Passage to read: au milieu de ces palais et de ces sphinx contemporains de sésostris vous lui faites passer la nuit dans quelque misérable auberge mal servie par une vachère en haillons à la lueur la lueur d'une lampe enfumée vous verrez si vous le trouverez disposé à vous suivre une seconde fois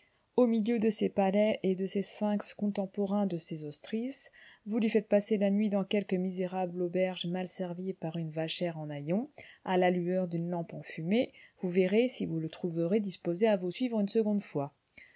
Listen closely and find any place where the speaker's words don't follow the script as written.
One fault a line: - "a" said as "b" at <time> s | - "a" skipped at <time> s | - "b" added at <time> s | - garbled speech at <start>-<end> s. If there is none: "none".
- "la lueur" skipped at 10.3 s